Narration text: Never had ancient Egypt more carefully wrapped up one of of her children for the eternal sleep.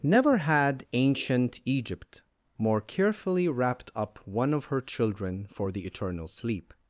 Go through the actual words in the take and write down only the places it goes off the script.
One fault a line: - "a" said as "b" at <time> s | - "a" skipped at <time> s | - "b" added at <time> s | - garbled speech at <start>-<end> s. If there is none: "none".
- "of" skipped at 4.7 s